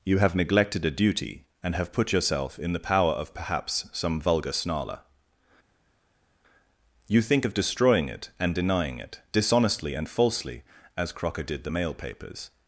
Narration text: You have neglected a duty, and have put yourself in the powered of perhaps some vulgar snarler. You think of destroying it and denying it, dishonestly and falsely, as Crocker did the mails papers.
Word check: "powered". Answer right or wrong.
wrong